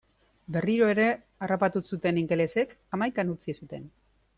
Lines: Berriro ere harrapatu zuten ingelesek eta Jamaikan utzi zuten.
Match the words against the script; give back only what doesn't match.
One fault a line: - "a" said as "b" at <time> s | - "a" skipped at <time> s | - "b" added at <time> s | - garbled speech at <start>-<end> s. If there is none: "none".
- "eta" skipped at 2.8 s